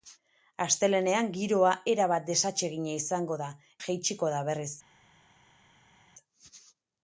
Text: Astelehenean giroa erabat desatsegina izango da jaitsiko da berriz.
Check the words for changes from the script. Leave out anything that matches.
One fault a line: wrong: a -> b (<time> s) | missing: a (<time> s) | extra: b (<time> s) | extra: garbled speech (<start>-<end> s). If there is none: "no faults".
no faults